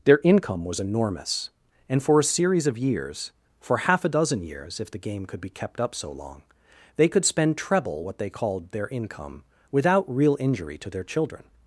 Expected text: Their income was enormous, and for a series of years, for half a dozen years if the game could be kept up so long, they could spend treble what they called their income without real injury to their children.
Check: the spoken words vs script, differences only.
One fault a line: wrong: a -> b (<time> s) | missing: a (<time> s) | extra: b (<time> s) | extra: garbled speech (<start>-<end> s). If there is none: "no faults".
no faults